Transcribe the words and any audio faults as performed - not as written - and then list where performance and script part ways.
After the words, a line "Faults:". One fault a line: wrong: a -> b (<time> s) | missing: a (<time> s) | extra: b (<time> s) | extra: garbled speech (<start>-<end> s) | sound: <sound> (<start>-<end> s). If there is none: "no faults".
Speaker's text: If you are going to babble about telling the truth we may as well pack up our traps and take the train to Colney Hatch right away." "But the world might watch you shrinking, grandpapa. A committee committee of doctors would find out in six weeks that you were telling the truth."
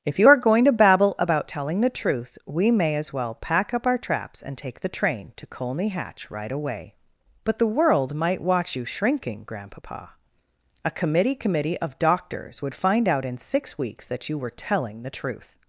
If you are going to babble about telling the truth we may as well pack up our traps and take the train to Colney Hatch right away." "But the world might watch you shrinking, grandpapa. A committee committee of doctors would find out in six weeks that you were telling the truth."
Faults:
no faults